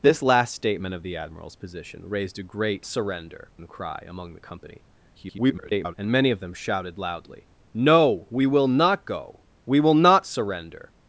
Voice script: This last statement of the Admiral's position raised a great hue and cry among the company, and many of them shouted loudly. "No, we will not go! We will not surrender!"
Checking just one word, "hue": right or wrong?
wrong